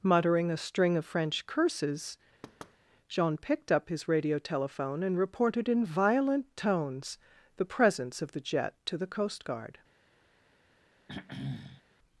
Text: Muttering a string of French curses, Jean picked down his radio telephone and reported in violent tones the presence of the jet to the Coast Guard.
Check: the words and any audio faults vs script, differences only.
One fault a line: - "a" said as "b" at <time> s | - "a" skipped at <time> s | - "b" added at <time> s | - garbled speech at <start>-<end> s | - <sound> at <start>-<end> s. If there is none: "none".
- thud at 2.4-2.8 s
- "down" said as "up" at 3.7 s
- throat clearing at 11.1-11.8 s